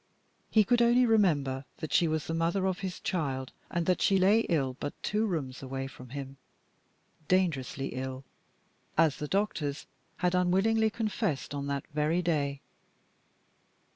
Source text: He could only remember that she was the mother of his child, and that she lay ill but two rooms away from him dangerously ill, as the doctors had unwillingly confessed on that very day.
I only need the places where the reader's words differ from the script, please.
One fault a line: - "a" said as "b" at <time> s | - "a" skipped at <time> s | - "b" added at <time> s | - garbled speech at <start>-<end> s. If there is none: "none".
none